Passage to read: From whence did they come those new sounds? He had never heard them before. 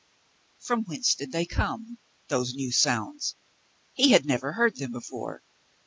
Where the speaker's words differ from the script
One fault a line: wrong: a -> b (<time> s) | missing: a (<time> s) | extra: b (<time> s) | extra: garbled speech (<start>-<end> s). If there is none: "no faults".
no faults